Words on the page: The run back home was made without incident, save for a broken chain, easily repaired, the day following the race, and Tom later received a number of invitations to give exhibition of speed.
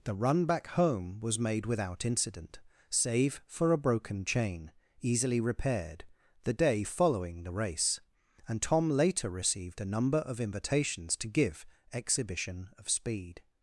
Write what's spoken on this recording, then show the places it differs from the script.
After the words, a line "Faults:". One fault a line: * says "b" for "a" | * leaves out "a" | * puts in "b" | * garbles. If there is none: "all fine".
The run back home was made without incident, save for a broken chain, easily repaired, the day following the race, and Tom later received a number of invitations to give exhibition of speed.
Faults:
all fine